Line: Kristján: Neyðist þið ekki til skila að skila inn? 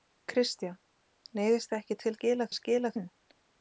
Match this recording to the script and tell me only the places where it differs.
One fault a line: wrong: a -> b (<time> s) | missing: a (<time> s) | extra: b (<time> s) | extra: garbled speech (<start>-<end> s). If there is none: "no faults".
no faults